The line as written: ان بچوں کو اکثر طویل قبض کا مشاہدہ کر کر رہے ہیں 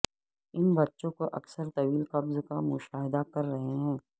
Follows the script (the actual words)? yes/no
no